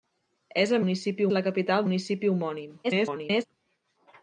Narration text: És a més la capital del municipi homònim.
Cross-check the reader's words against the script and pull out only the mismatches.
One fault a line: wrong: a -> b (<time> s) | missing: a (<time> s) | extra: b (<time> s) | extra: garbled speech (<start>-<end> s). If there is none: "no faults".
wrong: més -> municipi (0.8 s)
missing: del (1.9 s)
extra: garbled speech (2.8-3.5 s)